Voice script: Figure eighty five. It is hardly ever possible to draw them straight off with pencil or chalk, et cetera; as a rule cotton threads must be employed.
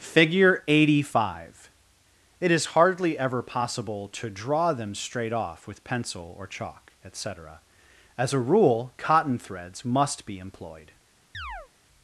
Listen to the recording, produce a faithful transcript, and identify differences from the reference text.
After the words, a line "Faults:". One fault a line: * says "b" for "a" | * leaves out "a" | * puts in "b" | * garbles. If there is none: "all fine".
Figure eighty five. It is hardly ever possible to draw them straight off with pencil or chalk, et cetera; as a rule cotton threads must be employed.
Faults:
all fine